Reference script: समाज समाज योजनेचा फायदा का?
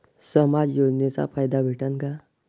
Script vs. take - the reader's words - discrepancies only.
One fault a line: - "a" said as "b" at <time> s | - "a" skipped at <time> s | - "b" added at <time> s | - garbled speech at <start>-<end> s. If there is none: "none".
- "समाज" skipped at 0.8 s
- "भेटन" added at 1.6 s